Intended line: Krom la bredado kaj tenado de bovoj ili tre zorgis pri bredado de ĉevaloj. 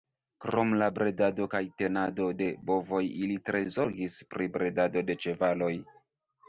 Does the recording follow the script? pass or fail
pass